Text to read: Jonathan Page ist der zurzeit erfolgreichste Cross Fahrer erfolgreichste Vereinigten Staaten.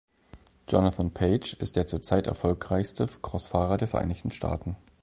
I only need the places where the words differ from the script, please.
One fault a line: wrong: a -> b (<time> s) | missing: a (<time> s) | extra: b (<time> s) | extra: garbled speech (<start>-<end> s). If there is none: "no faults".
wrong: erfolgreichste -> der (3.8 s)